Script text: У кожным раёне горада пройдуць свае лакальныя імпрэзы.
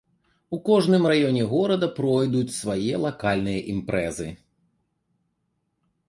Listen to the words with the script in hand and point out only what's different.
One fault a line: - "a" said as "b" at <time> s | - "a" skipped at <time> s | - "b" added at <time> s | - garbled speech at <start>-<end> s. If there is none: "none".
none